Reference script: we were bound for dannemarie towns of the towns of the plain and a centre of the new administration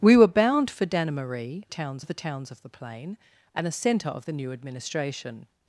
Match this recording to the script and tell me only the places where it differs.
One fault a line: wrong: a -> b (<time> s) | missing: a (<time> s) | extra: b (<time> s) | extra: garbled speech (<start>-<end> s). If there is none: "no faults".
no faults